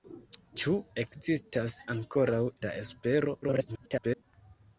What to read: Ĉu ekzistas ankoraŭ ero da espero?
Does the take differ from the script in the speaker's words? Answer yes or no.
yes